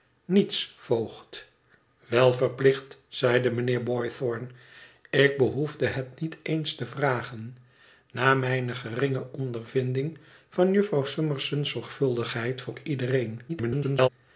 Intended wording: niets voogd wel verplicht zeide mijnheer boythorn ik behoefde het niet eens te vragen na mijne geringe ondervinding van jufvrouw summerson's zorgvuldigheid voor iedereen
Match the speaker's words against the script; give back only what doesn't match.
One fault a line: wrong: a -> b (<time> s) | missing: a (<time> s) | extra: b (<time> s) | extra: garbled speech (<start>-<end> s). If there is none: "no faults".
extra: garbled speech (13.5-14.1 s)